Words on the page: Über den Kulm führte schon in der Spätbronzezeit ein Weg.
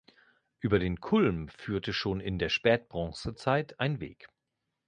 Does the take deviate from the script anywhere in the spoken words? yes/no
no